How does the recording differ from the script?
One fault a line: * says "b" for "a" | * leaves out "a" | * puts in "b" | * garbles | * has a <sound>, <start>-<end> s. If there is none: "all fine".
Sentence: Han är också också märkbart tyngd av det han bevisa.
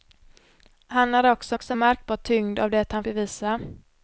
all fine